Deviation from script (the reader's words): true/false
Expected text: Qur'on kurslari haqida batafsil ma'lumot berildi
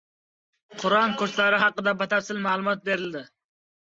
false